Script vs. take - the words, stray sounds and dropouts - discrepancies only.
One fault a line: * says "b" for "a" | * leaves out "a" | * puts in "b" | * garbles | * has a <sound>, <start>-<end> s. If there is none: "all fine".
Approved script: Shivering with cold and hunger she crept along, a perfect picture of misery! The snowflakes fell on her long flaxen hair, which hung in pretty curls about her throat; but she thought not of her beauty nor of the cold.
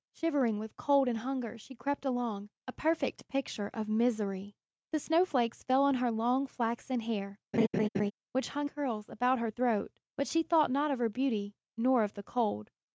* has a laugh, 7.5-8.1 s
* leaves out "in pretty"